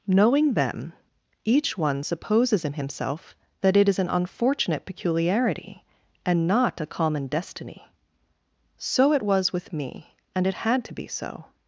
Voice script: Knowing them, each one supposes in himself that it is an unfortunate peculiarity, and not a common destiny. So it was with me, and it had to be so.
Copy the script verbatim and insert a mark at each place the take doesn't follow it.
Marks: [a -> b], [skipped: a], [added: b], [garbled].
Knowing them, each one supposes in himself that it is an unfortunate peculiarity, and not a common destiny. So it was with me, and it had to be so.